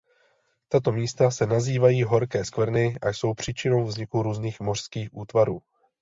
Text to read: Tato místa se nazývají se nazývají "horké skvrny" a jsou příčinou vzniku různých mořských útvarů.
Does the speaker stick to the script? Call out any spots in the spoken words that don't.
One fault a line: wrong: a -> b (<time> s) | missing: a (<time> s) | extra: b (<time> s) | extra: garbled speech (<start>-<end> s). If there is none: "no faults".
missing: se nazývají (2.0 s)